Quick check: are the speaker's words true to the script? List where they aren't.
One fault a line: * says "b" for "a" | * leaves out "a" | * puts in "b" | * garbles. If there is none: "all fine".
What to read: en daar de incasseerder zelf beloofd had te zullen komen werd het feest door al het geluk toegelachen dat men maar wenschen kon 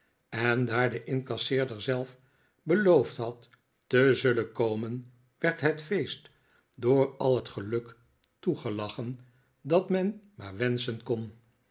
all fine